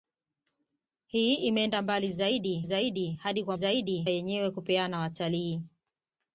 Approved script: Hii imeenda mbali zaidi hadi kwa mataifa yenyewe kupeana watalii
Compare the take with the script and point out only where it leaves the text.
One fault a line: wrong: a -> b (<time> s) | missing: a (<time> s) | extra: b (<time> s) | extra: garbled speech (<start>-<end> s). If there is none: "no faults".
extra: zaidi (2.6 s)
wrong: mataifa -> zaidi (3.5 s)